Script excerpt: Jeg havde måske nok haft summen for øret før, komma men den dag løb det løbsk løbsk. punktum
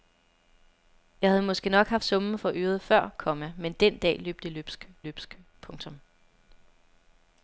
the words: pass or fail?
pass